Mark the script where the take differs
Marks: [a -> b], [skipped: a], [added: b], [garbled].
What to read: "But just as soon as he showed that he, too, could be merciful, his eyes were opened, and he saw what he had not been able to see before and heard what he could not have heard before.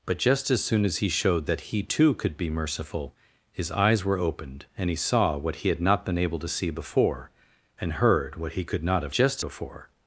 "But just as soon as he showed that he, too, could be merciful, his eyes were opened, and he saw what he had not been able to see before and heard what he could not have [heard -> just] before.